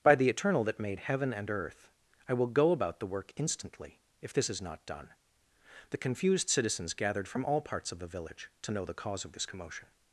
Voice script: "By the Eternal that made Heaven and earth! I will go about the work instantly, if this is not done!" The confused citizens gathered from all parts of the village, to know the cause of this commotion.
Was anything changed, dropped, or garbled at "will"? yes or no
no